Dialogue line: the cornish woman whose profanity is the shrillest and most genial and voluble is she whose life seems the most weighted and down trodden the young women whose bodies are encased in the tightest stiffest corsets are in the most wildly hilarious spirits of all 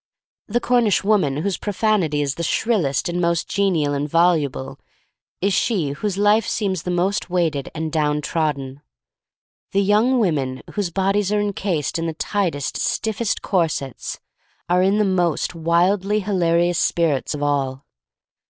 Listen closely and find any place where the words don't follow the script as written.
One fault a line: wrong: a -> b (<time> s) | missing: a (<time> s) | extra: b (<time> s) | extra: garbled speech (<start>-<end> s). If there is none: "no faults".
no faults